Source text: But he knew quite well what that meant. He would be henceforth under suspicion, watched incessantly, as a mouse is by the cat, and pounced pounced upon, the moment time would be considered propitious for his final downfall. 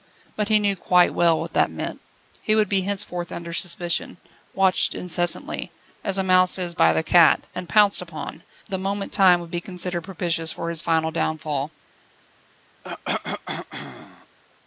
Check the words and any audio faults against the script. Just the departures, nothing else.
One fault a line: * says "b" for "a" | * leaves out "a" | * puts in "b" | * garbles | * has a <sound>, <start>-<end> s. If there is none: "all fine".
* leaves out "pounced"
* has a cough, 12.8-14.4 s